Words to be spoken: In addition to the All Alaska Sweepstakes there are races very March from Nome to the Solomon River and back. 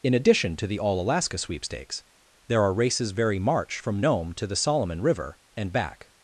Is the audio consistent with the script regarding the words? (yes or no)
yes